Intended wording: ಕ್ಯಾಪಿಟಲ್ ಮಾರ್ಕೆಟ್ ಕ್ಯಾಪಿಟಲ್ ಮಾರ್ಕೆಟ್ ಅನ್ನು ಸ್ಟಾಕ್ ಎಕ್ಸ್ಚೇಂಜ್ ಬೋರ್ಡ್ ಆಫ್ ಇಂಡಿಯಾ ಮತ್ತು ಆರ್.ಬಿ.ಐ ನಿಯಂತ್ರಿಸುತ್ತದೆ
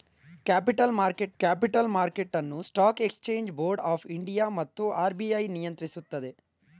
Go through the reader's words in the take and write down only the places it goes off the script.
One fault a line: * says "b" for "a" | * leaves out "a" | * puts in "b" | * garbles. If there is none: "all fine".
all fine